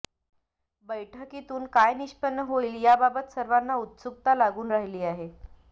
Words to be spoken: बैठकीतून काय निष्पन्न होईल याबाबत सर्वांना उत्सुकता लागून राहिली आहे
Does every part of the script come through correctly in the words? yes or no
yes